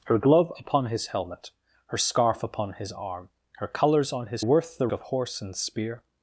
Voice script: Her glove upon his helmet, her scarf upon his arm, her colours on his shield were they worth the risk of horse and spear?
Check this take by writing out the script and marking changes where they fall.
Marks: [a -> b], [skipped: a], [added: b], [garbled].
Her glove upon his helmet, her scarf upon his arm, her colours on his [skipped: shield were they] worth the [skipped: risk] of horse and spear?